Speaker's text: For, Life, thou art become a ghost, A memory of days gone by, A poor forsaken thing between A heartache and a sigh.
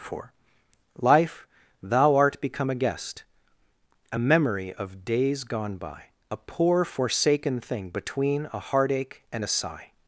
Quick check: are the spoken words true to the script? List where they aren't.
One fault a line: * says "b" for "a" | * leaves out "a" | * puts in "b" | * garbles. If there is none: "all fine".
* says "guest" for "ghost"